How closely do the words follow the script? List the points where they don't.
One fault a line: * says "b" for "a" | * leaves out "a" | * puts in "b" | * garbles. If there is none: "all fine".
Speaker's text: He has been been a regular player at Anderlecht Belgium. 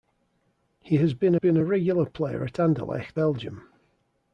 all fine